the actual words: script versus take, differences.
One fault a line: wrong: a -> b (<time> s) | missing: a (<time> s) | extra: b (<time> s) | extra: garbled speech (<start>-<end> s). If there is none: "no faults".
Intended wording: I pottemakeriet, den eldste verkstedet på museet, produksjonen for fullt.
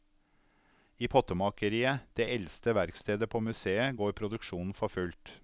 wrong: den -> det (2.2 s)
extra: går (4.0 s)